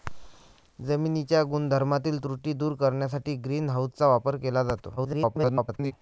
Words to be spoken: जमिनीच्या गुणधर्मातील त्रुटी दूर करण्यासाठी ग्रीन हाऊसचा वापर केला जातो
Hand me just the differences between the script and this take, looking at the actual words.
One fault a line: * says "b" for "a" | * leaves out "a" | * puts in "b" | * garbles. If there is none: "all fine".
* garbles